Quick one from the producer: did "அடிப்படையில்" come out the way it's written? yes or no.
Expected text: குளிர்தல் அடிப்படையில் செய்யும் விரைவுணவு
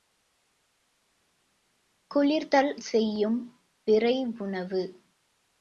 no